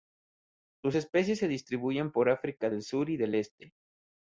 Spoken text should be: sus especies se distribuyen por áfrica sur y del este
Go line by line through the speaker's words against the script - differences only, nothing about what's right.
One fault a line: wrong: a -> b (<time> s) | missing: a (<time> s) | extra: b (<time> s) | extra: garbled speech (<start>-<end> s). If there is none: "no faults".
extra: del (2.7 s)